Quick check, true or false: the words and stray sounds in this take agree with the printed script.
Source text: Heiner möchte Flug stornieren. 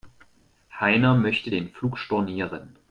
false